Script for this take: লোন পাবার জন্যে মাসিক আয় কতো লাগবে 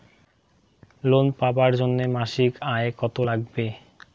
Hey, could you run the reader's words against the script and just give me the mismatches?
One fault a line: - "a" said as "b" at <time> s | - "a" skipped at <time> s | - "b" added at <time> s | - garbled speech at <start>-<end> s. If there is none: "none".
none